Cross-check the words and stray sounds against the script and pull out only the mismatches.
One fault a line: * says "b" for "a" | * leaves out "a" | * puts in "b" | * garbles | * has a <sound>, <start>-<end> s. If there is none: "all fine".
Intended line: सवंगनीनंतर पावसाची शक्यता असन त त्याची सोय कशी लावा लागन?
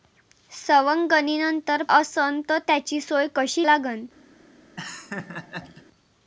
* leaves out "पावसाची शक्यता"
* leaves out "लावा"
* has a laugh, 4.8-5.8 s